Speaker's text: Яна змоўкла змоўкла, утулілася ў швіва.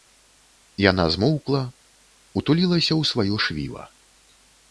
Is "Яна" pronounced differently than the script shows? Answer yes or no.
no